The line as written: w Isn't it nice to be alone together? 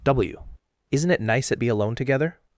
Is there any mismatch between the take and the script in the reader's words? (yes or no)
yes